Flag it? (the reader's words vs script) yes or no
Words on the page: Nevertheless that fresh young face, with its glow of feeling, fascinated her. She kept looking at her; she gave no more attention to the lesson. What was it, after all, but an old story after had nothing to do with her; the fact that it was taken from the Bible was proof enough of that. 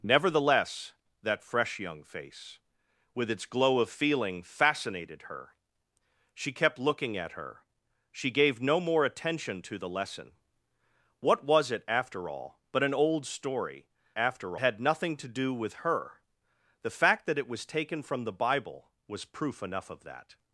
no